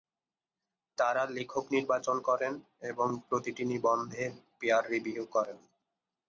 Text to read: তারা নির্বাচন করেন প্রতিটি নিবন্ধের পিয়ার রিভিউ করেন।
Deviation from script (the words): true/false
true